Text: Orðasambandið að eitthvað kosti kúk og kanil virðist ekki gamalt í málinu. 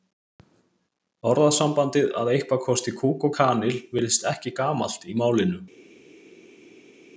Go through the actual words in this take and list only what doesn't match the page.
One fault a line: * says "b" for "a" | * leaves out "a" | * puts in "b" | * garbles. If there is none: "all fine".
all fine